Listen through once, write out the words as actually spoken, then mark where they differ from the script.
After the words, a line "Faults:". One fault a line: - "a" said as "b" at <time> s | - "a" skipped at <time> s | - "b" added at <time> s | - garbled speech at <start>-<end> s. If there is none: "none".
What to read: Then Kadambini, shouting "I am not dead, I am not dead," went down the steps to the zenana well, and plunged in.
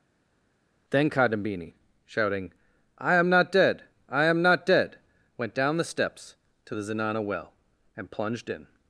Then Kadambini, shouting "I am not dead, I am not dead," went down the steps to the zenana well, and plunged in.
Faults:
none